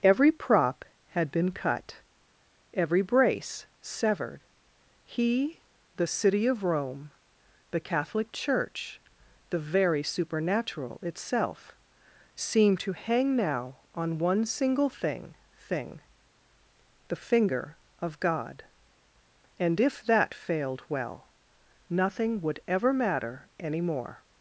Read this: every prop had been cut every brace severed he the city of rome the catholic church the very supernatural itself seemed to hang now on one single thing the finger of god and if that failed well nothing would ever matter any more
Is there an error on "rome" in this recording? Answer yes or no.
no